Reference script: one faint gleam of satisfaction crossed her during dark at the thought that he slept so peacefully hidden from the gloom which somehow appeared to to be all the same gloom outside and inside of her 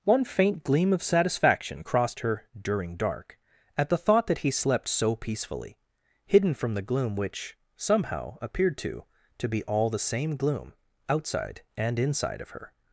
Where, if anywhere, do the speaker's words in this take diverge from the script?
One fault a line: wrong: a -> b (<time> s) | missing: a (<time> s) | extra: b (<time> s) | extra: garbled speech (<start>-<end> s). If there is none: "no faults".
no faults